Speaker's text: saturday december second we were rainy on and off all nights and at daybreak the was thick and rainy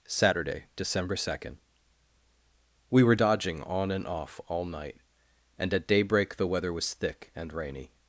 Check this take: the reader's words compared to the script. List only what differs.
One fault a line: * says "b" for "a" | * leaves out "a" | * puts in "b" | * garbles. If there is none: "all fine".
* says "dodging" for "rainy"
* says "night" for "nights"
* puts in "weather"